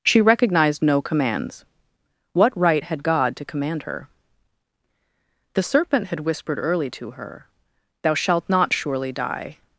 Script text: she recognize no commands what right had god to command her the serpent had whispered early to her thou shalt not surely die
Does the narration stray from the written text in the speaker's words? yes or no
yes